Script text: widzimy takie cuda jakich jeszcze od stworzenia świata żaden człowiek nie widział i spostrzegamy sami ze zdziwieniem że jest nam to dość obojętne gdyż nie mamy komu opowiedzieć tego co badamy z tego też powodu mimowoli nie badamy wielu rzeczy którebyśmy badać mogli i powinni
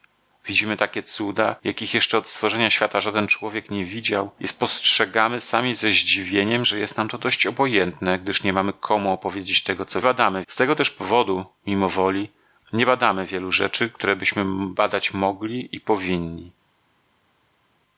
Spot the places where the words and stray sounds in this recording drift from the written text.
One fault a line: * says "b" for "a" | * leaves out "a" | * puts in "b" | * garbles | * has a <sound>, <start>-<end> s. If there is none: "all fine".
all fine